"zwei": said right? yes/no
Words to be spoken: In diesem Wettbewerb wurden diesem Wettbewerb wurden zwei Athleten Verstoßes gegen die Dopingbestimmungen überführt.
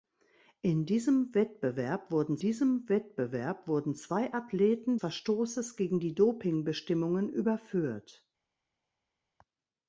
yes